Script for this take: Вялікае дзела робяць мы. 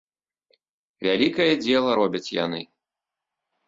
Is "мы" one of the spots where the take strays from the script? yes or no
yes